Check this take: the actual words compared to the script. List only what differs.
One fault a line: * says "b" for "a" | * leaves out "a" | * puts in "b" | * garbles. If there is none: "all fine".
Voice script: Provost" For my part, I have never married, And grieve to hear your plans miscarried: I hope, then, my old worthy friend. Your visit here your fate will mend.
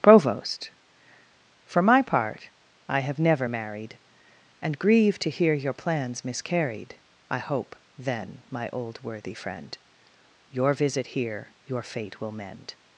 all fine